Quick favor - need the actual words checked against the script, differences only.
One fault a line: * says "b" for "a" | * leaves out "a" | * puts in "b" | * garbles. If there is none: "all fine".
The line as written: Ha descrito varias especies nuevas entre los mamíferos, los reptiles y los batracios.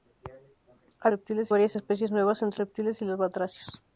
* says "reptiles" for "descrito"
* leaves out "los mamíferos los"